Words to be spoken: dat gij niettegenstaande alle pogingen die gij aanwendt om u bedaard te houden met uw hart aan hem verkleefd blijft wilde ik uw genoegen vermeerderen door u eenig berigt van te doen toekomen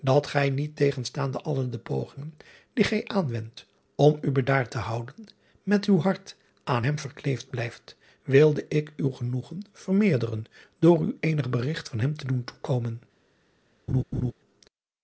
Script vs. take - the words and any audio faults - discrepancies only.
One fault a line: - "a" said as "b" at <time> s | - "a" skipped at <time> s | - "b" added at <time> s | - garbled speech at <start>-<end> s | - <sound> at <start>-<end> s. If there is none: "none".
- "de" added at 1.7 s
- "hem" added at 12.0 s
- laugh at 13.9-14.3 s